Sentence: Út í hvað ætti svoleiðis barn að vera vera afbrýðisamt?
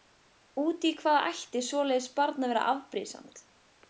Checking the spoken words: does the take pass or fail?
fail